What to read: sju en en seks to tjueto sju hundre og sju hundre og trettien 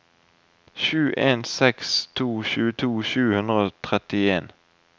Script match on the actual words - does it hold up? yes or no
no